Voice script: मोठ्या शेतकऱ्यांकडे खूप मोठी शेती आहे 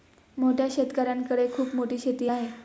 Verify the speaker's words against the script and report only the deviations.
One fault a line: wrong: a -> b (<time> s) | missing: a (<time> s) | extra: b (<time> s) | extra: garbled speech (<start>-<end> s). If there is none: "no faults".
no faults